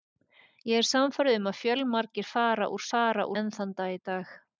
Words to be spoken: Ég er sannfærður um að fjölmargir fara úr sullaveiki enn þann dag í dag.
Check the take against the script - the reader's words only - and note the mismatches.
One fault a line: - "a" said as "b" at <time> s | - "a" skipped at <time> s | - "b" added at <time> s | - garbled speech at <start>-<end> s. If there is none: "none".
- "sullaveiki" said as "fara" at 2.9 s